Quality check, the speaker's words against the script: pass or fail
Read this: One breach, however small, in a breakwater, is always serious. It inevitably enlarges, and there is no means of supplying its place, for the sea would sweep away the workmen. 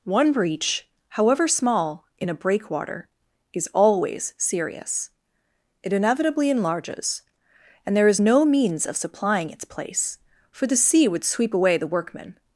pass